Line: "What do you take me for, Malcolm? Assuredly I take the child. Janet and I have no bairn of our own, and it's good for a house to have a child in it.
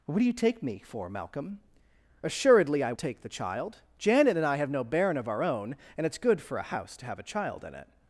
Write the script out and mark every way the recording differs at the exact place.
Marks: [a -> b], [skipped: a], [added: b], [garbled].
"What do you take me for, Malcolm? Assuredly I take the child. Janet and I have no bairn of our own, and it's good for a house to have a child in it.